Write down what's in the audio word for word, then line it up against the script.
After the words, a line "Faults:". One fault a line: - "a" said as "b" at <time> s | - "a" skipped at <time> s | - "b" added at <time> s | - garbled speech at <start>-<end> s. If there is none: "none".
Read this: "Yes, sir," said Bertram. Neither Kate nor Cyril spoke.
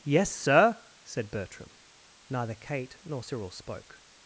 "Yes, sir," said Bertram. Neither Kate nor Cyril spoke.
Faults:
none